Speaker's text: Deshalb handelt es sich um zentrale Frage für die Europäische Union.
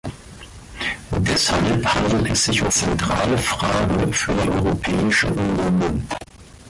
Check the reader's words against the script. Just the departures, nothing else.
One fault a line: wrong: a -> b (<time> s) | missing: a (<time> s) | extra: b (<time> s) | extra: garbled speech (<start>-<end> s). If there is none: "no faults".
no faults